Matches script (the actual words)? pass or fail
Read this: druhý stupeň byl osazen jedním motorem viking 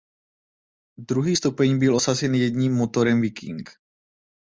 pass